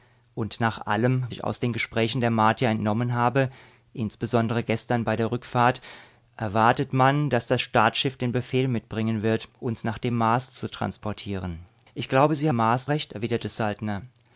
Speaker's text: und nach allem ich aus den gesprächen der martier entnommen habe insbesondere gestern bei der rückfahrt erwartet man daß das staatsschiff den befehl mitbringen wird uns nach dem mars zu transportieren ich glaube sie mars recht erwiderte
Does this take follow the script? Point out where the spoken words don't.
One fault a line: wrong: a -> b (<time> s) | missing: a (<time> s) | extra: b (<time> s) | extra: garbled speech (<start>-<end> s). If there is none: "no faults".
no faults